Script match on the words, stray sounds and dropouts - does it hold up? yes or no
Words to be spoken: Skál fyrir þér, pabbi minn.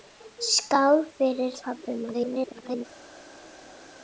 no